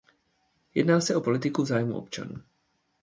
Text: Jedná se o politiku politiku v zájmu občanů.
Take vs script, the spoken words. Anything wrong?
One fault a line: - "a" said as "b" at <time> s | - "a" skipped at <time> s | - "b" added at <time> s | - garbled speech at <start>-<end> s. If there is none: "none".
- "politiku" skipped at 1.6 s